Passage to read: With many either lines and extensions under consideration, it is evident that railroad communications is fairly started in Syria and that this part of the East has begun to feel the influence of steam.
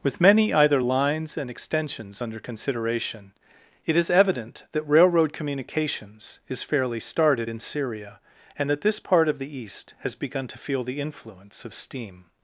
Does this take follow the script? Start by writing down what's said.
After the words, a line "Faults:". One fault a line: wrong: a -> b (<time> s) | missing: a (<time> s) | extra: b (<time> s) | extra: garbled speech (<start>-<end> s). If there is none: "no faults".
With many either lines and extensions under consideration, it is evident that railroad communications is fairly started in Syria and that this part of the East has begun to feel the influence of steam.
Faults:
no faults